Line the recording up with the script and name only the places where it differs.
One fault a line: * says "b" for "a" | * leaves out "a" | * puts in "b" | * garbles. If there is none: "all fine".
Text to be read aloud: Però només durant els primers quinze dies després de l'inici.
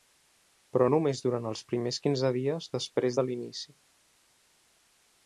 all fine